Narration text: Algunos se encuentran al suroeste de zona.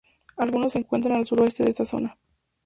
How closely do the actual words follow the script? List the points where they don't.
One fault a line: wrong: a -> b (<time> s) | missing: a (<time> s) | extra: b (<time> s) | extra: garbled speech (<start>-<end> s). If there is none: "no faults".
extra: esta (1.7 s)